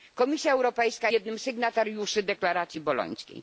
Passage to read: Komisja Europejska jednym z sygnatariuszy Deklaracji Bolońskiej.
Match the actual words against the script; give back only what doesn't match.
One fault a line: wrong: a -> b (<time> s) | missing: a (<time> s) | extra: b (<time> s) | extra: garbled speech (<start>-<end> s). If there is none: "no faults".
no faults